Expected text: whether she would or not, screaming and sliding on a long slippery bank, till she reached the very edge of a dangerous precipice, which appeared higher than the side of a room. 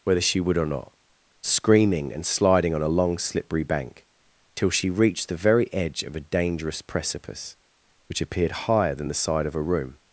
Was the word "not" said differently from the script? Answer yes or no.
no